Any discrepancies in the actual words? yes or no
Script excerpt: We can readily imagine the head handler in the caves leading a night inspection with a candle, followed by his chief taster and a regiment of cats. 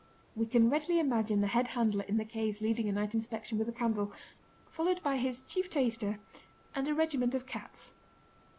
no